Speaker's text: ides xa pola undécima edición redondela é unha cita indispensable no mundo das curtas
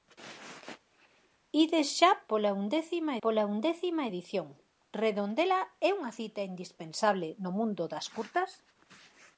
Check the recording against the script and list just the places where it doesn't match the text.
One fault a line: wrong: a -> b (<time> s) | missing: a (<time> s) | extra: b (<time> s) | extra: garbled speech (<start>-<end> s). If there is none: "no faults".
extra: pola undécima (3.2 s)